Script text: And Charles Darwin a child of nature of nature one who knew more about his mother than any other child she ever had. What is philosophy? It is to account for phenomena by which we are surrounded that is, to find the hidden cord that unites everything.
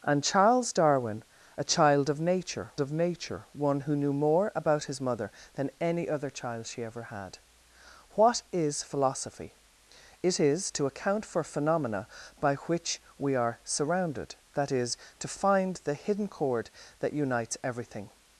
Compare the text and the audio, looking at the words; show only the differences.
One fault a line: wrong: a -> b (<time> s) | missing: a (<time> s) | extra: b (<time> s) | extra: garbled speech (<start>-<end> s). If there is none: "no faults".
no faults